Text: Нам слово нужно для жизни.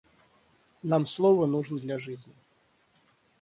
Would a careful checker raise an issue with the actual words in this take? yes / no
no